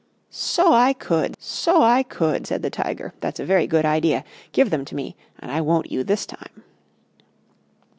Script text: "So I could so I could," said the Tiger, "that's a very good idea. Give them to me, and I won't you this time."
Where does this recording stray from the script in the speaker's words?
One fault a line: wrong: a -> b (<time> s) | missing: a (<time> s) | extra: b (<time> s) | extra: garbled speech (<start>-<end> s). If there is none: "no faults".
no faults